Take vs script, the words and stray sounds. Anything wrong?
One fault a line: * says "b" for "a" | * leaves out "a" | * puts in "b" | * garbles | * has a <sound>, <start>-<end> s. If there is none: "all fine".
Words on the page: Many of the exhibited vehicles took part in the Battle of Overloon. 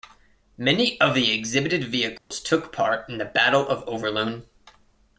* has a dropout, 2.2-2.3 s